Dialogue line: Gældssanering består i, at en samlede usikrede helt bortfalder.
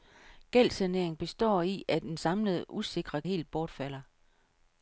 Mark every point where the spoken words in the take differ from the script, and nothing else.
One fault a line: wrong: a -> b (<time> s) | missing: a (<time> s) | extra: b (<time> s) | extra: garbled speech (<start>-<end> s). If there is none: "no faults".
no faults